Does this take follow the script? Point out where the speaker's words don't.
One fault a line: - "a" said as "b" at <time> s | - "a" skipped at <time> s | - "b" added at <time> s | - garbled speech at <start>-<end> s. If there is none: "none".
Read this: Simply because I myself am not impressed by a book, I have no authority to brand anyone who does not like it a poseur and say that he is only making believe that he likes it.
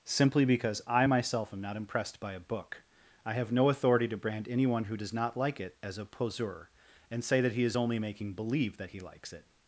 - "as" added at 5.8 s